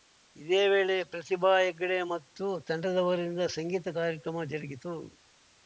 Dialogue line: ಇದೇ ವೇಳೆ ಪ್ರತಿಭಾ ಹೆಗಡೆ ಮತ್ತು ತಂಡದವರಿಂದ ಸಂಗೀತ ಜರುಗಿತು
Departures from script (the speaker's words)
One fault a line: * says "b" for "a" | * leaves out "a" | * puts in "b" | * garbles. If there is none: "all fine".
* puts in "ಕಾರ್ಯಕ್ರಮ"